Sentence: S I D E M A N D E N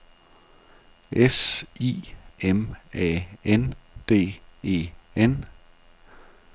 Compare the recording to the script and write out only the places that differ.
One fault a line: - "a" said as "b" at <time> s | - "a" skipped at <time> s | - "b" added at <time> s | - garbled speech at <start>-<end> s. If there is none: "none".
- "D E" skipped at 2.0 s